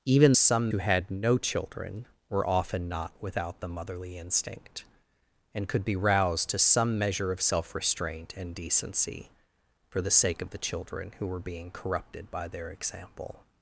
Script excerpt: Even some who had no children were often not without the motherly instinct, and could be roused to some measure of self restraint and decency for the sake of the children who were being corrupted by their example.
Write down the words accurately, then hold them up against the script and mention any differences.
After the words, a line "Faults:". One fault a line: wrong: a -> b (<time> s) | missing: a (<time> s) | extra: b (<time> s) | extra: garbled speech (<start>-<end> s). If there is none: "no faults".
Even some who had no children were often not without the motherly instinct, and could be roused to some measure of self restraint and decency for the sake of the children who were being corrupted by their example.
Faults:
no faults